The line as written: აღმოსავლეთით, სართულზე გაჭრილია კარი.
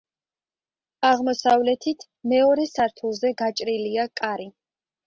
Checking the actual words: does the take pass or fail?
fail